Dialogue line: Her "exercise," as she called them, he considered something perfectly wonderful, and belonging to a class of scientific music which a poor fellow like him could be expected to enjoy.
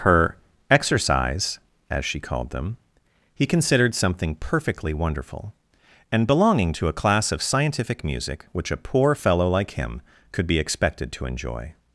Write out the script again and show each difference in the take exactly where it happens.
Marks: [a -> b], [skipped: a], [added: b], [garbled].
Her "exercise," as she called them, he considered something perfectly wonderful, and belonging to a class of scientific music which a poor fellow like him could be expected to enjoy.